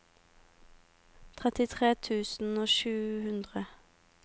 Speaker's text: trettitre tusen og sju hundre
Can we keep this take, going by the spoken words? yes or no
yes